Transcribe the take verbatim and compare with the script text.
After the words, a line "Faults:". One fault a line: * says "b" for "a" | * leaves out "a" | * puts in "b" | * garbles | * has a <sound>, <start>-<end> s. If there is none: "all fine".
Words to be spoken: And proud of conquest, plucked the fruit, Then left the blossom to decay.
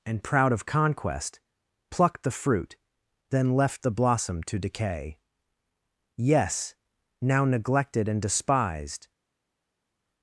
And proud of conquest, plucked the fruit, Then left the blossom to decay. "Yes! now neglected and despised
Faults:
* puts in "Yes now neglected and despised"